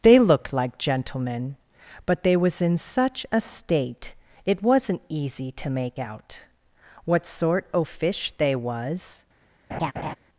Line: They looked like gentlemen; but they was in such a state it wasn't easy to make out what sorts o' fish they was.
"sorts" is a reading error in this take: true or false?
true